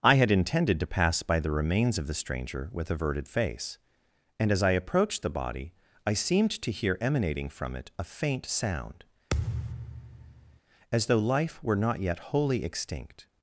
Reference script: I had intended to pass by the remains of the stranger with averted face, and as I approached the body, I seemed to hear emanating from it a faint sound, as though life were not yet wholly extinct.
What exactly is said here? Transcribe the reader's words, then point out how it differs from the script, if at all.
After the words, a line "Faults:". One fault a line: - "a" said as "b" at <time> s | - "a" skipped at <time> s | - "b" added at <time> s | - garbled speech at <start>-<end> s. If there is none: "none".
I had intended to pass by the remains of the stranger with averted face, and as I approached the body, I seemed to hear emanating from it a faint sound, as though life were not yet wholly extinct.
Faults:
none